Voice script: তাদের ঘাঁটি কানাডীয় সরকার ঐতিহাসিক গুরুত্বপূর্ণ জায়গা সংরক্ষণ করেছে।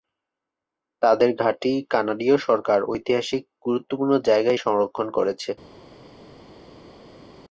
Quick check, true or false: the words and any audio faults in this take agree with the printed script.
true